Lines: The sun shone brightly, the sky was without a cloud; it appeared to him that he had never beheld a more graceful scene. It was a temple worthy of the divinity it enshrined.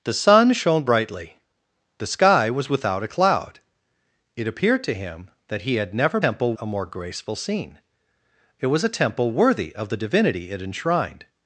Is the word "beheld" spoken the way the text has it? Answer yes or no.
no